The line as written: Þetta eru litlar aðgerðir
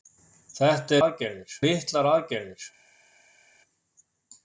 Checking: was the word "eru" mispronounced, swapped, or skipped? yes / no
yes